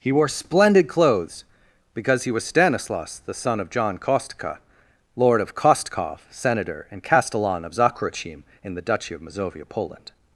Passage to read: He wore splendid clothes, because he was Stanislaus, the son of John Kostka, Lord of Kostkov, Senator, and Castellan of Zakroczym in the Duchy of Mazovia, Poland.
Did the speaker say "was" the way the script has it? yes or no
yes